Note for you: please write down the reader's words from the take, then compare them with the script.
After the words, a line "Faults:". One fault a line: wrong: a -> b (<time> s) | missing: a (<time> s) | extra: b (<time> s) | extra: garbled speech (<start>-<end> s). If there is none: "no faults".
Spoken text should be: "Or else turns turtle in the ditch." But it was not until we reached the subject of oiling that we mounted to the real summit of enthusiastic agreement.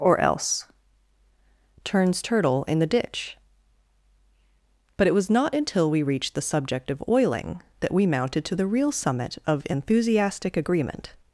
"Or else turns turtle in the ditch." But it was not until we reached the subject of oiling that we mounted to the real summit of enthusiastic agreement.
Faults:
no faults